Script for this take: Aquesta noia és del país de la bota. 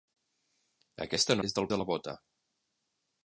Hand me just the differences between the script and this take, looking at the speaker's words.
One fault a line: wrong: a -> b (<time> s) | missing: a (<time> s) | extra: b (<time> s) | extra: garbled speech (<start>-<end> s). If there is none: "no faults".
missing: noia (1.4 s)
missing: país (1.7 s)